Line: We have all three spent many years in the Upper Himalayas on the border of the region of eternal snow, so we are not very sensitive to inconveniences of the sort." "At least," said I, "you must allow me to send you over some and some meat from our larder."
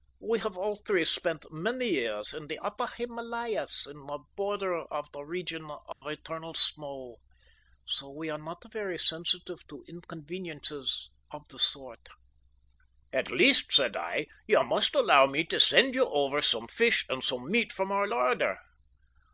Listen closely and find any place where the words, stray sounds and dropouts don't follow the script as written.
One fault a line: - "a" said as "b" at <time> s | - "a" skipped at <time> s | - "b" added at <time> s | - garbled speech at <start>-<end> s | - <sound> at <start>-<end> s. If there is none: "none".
- dropout at 5.9-6.0 s
- "fish" added at 16.7 s